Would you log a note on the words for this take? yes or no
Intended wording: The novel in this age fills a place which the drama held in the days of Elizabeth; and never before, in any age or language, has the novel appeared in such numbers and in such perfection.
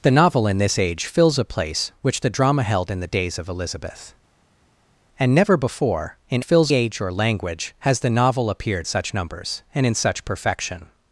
yes